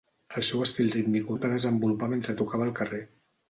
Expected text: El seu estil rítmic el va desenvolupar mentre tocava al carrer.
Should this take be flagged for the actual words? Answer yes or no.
no